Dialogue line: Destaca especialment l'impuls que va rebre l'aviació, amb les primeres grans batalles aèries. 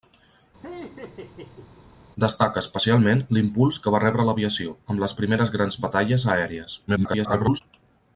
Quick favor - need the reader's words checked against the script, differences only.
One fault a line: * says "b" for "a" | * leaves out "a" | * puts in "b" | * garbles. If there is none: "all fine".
* garbles